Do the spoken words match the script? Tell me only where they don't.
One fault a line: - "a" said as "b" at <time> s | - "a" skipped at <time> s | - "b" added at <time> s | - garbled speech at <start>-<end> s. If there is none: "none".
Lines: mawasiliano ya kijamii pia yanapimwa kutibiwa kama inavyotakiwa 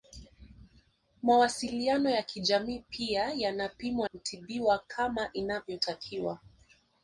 none